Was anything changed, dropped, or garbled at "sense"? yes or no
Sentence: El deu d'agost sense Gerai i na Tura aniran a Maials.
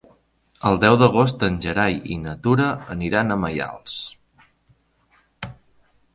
yes